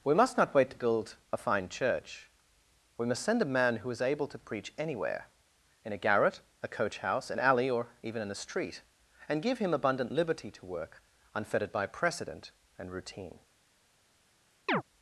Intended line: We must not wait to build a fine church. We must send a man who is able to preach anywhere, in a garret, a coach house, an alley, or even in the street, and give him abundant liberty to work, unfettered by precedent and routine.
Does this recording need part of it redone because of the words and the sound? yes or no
yes